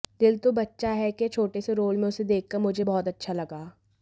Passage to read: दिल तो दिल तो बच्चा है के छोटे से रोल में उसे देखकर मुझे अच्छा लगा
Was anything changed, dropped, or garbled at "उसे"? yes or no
no